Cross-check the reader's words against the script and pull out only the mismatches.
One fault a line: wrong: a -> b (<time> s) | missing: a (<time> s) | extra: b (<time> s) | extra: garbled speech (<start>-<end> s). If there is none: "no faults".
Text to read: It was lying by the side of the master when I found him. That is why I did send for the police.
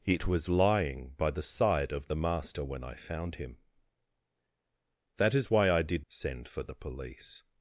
no faults